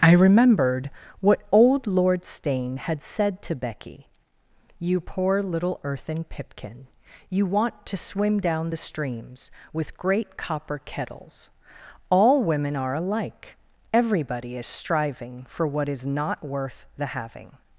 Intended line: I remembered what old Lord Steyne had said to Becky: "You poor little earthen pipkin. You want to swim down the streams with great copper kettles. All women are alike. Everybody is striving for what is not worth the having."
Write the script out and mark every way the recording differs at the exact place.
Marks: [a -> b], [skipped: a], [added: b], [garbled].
I remembered what old Lord Steyne had said to Becky: "You poor little earthen pipkin. You want to swim down the streams with great copper kettles. All women are alike. Everybody is striving for what is not worth the having."